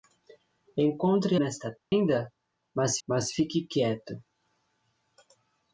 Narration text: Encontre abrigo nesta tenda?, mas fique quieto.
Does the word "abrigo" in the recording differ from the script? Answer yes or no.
yes